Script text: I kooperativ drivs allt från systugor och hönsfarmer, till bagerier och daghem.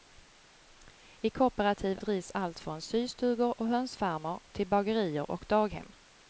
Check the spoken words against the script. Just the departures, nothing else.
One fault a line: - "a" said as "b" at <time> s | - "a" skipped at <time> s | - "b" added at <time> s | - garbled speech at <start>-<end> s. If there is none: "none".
none